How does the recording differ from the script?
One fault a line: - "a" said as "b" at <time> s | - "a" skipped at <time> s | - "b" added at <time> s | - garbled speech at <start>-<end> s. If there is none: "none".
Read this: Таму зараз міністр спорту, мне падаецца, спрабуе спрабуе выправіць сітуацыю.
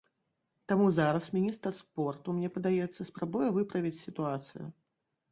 - "спрабуе" skipped at 3.5 s